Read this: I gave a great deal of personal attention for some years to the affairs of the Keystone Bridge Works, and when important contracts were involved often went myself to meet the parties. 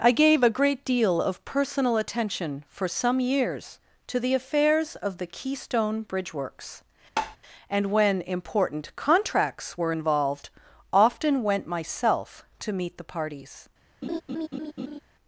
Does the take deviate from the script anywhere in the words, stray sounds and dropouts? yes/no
yes